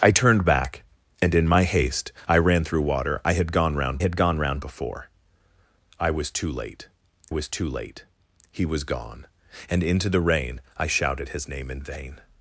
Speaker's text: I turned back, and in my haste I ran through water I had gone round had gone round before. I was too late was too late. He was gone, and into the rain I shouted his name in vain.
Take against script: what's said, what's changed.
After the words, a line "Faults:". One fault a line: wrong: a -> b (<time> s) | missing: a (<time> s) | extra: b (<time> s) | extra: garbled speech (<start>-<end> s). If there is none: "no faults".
I turned back, and in my haste I ran through water I had gone round had gone round before. I was too late was too late. He was gone, and into the rain I shouted his name in vain.
Faults:
no faults